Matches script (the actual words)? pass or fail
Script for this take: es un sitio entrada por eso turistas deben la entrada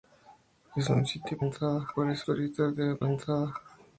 pass